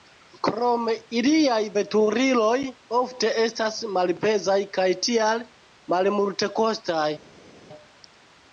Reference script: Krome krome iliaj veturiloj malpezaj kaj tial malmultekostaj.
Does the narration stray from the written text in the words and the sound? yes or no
yes